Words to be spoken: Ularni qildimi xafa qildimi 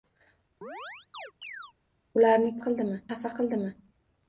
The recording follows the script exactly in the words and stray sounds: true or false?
false